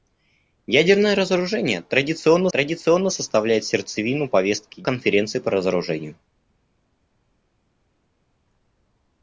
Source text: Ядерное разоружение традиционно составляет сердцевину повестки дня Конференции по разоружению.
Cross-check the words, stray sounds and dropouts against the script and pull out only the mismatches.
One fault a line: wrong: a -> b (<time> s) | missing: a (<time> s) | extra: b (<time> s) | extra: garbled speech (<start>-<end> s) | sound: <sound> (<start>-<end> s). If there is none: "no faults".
extra: традиционно (2.5 s)
missing: дня (4.8 s)